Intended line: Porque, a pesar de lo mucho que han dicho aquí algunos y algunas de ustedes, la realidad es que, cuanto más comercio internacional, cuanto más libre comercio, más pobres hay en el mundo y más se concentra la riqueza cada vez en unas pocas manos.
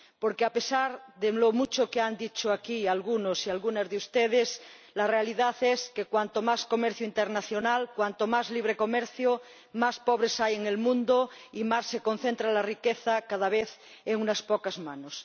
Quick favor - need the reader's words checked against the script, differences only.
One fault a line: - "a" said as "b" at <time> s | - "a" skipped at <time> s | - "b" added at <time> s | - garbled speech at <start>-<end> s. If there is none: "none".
none